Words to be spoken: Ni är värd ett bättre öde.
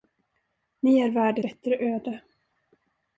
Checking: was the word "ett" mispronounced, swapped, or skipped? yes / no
yes